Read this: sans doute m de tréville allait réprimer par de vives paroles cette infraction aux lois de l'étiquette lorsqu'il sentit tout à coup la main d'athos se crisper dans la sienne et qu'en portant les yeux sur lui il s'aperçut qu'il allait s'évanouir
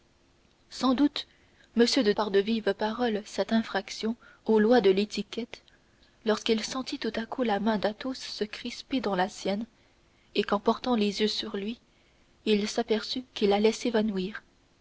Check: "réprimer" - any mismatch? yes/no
yes